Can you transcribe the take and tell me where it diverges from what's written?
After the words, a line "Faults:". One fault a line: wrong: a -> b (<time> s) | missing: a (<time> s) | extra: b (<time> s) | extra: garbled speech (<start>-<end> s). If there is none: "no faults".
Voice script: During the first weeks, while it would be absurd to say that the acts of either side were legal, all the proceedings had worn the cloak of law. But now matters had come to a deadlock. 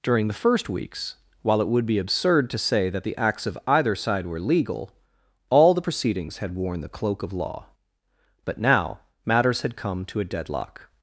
During the first weeks, while it would be absurd to say that the acts of either side were legal, all the proceedings had worn the cloak of law. But now matters had come to a deadlock.
Faults:
no faults